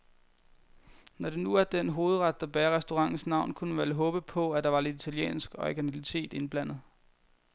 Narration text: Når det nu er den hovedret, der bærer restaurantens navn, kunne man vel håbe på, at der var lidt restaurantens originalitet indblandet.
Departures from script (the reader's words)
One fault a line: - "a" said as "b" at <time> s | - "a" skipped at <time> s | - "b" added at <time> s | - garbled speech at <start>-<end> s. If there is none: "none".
- "restaurantens" said as "italiensk" at 5.0 s